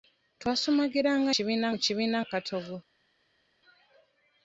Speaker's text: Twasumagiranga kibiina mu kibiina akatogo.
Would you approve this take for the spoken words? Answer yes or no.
yes